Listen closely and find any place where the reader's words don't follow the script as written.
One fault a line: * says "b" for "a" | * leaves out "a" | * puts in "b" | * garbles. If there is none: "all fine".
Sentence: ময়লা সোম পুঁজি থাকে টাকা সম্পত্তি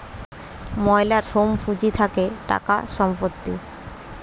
all fine